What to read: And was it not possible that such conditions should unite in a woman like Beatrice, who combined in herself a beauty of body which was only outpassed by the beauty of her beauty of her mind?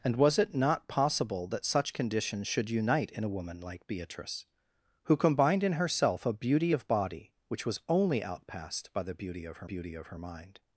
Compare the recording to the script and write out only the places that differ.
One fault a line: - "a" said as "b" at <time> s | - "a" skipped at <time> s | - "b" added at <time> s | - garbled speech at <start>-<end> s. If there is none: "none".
none